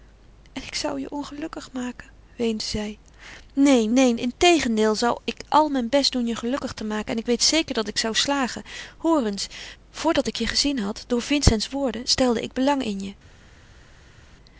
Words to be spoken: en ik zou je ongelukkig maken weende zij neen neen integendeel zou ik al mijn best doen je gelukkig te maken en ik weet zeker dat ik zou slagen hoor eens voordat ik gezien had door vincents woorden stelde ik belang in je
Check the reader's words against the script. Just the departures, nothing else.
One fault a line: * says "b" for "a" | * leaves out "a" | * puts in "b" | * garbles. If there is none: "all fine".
* puts in "je"